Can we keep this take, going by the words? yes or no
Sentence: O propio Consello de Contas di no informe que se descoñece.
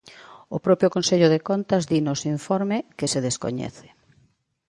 no